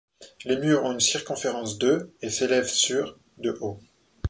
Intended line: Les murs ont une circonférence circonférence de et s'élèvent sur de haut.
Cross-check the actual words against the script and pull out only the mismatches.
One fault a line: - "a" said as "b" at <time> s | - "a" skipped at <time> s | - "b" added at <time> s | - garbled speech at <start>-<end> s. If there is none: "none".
- "circonférence" skipped at 1.8 s